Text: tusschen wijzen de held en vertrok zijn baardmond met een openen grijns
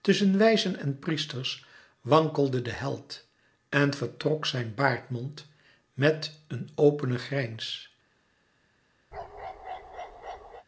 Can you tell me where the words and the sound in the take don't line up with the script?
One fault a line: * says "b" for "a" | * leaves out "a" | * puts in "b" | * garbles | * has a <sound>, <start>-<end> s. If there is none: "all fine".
* puts in "en priesters wankelde"
* has a bark, 9.1-10.7 s